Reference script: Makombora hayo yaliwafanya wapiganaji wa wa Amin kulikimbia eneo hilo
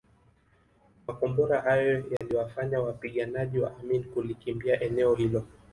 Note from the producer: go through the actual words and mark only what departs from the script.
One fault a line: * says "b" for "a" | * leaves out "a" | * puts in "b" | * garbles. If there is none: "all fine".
* leaves out "wa"